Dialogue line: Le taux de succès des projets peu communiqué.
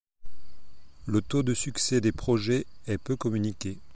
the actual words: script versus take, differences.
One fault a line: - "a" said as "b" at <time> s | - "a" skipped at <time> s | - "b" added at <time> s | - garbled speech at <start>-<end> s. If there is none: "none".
- "est" added at 2.9 s